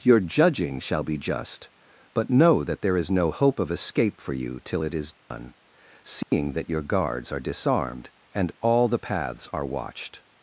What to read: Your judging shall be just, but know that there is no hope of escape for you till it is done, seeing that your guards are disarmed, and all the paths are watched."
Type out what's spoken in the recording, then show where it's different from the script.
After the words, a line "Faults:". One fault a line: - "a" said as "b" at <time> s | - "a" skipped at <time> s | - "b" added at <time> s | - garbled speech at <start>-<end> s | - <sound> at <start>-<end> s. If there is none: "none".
Your judging shall be just, but know that there is no hope of escape for you till it is done, seeing that your guards are disarmed, and all the paths are watched."
Faults:
- dropout at 5.2-5.3 s
- dropout at 6.2-6.3 s